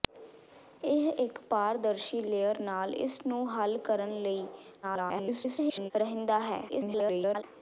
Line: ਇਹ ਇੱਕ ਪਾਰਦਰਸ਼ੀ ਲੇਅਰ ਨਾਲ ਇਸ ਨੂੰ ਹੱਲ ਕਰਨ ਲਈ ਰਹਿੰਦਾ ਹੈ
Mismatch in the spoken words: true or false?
true